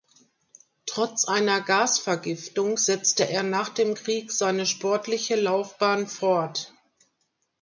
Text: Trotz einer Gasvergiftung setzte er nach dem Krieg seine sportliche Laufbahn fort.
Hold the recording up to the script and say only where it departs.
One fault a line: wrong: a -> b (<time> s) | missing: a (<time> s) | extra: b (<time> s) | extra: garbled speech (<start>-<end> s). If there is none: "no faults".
no faults